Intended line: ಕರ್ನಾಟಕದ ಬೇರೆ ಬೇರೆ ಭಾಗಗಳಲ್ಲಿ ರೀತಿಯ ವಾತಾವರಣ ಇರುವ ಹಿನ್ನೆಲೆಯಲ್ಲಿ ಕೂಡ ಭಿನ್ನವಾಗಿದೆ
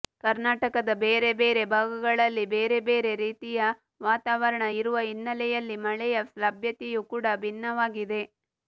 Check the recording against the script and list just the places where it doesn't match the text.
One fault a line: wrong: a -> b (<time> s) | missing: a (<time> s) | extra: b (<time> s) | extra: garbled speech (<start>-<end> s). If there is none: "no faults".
extra: ಬೇರೆ ಬೇರೆ (2.5 s)
extra: ಮಳೆಯ ಲಭ್ಯತೆಯೂ (5.9 s)